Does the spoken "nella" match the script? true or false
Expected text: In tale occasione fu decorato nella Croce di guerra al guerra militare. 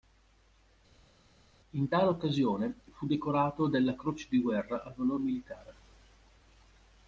false